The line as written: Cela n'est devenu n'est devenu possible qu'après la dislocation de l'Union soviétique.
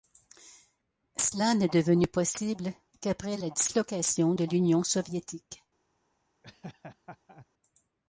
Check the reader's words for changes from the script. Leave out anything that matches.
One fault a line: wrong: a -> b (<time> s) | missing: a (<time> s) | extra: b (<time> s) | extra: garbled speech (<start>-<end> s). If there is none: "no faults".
missing: n'est devenu (2.1 s)